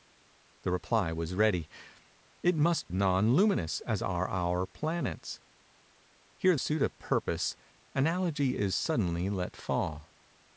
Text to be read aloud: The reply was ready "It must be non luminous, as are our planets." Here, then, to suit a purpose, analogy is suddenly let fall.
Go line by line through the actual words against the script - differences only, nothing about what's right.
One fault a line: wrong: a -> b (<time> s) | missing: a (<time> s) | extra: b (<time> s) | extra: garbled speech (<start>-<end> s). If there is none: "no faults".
missing: be (2.9 s)
missing: then to (6.6 s)